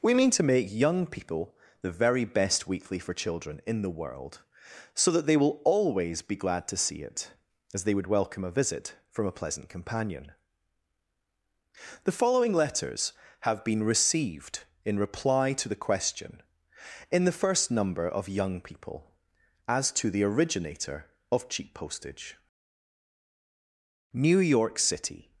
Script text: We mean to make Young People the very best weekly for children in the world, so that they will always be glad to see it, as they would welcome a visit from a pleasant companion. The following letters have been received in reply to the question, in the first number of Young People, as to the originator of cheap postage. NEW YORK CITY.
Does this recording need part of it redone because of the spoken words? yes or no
no